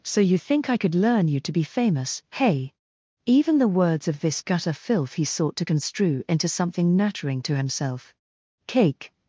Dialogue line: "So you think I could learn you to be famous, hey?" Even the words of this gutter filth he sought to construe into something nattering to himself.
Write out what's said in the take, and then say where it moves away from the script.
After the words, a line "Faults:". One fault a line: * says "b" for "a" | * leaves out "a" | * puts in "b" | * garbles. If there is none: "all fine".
"So you think I could learn you to be famous, hey?" Even the words of this gutter filth he sought to construe into something nattering to himself. Cake
Faults:
* puts in "Cake"